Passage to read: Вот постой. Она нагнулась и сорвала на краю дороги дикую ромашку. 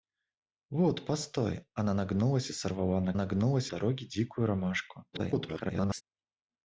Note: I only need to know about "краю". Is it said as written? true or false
false